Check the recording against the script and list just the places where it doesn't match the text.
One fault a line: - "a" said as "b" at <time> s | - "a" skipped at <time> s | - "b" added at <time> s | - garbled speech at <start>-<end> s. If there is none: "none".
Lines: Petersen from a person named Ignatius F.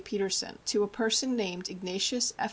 - "from" said as "to" at 0.7 s